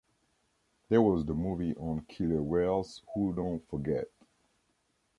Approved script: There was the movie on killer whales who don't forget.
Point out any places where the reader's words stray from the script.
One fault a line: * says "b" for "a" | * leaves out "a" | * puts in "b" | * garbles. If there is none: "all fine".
all fine